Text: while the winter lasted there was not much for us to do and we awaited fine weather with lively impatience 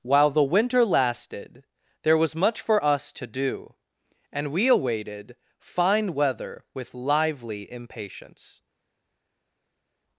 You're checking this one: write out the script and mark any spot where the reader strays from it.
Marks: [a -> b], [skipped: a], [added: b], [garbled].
while the winter lasted there was [skipped: not] much for us to do and we awaited fine weather with lively impatience